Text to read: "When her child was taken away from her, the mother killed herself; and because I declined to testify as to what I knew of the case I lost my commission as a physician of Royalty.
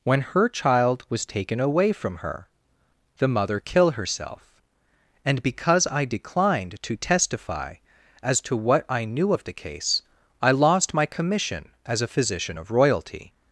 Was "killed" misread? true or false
true